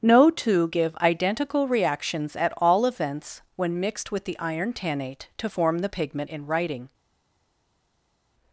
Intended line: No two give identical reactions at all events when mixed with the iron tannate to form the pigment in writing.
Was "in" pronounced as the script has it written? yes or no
yes